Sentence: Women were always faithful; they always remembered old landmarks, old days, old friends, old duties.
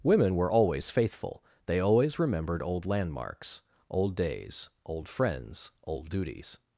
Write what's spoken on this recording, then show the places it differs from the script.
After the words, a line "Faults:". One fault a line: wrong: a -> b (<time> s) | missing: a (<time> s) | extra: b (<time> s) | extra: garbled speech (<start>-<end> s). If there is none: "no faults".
Women were always faithful; they always remembered old landmarks, old days, old friends, old duties.
Faults:
no faults